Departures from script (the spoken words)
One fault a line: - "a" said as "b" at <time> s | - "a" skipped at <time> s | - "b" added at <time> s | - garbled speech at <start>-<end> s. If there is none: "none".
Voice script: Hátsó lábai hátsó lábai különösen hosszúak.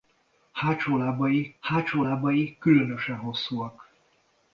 none